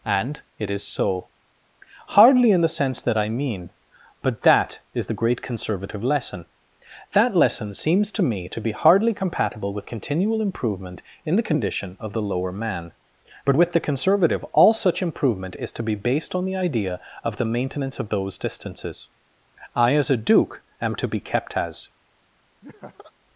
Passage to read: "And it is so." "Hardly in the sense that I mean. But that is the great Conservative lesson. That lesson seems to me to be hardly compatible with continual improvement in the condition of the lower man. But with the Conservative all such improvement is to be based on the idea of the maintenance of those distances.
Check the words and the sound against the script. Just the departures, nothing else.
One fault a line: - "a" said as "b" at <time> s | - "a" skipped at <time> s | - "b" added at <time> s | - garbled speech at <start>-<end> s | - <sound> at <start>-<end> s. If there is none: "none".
- "I as a Duke am to be kept as" added at 19.7 s
- laugh at 22.6-23.1 s